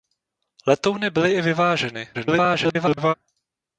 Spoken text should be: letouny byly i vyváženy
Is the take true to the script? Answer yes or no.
no